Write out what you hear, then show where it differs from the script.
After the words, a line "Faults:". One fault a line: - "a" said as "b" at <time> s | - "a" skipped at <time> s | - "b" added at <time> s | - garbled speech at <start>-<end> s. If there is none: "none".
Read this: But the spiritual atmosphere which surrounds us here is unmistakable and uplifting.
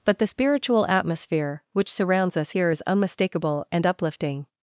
But the spiritual atmosphere which surrounds us here is unmistakable and uplifting.
Faults:
none